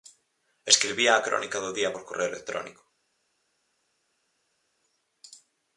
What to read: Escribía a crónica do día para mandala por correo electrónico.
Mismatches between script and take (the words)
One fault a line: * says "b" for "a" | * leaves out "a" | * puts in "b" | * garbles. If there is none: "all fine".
* leaves out "para mandala"